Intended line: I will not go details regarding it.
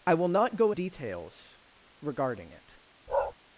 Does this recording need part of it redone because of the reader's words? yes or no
no